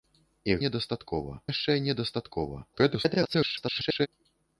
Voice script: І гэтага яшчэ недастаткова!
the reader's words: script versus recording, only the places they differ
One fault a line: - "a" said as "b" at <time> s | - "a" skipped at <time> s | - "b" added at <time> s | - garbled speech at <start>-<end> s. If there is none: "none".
- "гэтага" said as "недастаткова" at 0.6 s
- garbled speech at 2.7-4.1 s